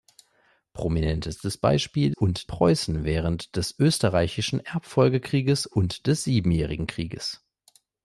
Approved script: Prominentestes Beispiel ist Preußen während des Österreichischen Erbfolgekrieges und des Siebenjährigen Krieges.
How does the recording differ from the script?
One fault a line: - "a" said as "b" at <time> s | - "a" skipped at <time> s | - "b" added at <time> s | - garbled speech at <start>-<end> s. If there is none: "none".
- "ist" said as "und" at 2.1 s